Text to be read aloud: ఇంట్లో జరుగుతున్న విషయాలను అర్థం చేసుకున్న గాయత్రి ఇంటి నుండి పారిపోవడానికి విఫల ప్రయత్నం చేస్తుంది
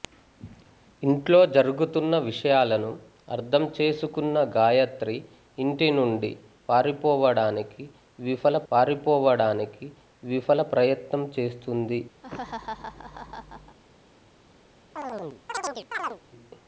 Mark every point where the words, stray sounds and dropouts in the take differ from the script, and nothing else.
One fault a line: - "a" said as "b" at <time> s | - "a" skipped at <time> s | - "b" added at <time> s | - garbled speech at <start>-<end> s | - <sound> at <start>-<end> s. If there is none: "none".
- "పారిపోవడానికి విఫల" added at 8.7 s
- laugh at 12.2-13.8 s
- chirp at 15.0-16.2 s